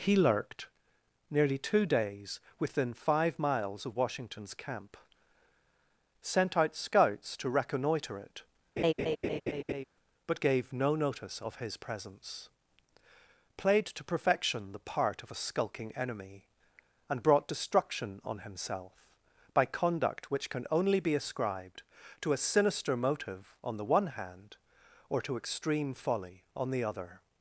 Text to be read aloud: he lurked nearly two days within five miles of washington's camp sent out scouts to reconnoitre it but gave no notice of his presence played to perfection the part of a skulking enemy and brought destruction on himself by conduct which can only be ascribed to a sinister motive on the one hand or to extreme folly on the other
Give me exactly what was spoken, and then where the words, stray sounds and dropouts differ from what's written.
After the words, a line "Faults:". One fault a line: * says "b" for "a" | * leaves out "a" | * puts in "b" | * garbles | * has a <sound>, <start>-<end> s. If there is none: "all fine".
he lurked nearly two days within five miles of washington's camp sent out scouts to reconnoitre it but gave no notice of his presence played to perfection the part of a skulking enemy and brought destruction on himself by conduct which can only be ascribed to a sinister motive on the one hand or to extreme folly on the other
Faults:
* has a laugh, 8.8-9.8 s